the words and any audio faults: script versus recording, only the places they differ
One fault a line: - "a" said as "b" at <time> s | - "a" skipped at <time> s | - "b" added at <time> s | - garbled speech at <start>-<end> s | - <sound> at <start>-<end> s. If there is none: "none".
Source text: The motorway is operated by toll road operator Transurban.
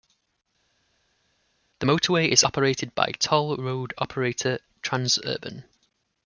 none